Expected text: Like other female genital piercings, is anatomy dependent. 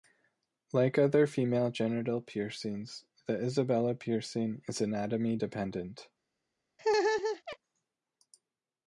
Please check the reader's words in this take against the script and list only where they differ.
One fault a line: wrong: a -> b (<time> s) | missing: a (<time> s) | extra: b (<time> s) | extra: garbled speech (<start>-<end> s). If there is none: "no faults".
extra: the Isabella piercing (3.3 s)